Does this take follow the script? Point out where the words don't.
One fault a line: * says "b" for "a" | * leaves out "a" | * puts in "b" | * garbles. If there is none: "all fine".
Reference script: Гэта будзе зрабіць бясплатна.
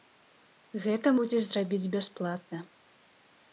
all fine